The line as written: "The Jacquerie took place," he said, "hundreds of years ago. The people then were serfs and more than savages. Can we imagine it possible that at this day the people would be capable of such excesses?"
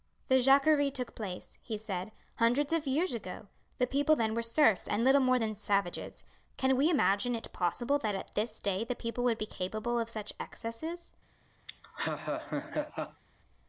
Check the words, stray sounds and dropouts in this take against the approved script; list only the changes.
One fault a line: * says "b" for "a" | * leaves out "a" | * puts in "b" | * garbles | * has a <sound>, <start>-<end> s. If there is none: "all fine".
* puts in "little"
* has a laugh, 11.7-13.2 s